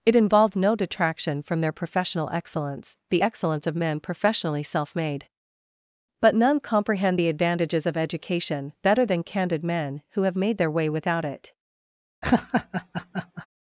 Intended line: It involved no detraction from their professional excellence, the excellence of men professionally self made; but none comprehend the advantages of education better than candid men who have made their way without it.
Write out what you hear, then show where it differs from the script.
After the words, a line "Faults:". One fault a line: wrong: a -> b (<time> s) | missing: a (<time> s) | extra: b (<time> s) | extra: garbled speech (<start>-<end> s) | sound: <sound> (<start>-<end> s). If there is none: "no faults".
It involved no detraction from their professional excellence, the excellence of men professionally self made; but none comprehend the advantages of education better than candid men who have made their way without it.
Faults:
sound: laugh (12.2-13.5 s)